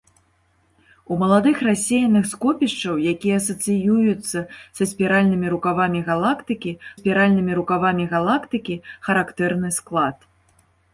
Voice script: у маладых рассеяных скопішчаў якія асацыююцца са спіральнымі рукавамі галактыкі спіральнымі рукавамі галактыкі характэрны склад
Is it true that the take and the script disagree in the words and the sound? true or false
false